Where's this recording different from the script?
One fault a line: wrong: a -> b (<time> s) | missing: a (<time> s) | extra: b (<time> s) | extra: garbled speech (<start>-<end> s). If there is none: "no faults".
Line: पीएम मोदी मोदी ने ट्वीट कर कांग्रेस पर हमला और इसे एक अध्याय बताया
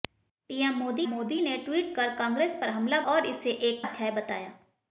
no faults